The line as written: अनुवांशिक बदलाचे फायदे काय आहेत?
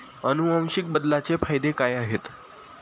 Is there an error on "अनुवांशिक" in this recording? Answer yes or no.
no